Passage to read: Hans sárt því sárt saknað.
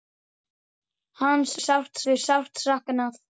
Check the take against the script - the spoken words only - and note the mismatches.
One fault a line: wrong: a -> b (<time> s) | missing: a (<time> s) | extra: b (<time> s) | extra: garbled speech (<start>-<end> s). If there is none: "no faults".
no faults